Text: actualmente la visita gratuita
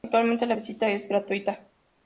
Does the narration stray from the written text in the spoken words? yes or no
yes